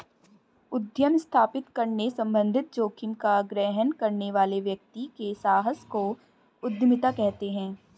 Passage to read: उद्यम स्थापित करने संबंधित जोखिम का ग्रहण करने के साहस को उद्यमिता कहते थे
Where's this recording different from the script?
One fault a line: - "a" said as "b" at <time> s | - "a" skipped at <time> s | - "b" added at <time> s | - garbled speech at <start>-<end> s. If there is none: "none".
- "वाले व्यक्ति" added at 4.3 s
- "थे" said as "हैं" at 7.5 s